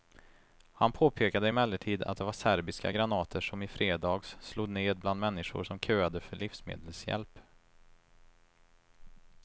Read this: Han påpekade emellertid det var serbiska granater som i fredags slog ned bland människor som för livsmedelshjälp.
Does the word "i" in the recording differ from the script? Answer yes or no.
no